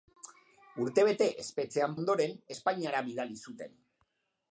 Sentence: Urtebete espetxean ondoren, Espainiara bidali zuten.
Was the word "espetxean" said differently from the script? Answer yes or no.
no